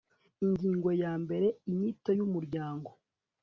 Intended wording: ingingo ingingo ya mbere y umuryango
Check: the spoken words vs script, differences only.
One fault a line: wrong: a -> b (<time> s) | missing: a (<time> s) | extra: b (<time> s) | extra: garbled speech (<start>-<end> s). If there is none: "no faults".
missing: ingingo (0.9 s)
extra: inyito (1.7 s)